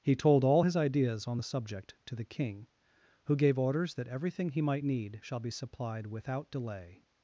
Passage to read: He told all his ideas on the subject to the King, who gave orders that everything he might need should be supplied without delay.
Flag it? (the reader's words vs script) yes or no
yes